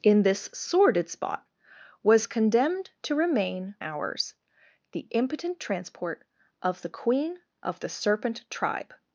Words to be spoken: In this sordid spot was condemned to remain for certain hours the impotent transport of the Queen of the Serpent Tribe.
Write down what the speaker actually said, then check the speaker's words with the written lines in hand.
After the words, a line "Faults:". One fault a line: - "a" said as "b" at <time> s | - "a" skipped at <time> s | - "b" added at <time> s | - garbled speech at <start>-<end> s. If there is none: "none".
In this sordid spot was condemned to remain hours the impotent transport of the Queen of the Serpent Tribe.
Faults:
- "for certain" skipped at 3.8 s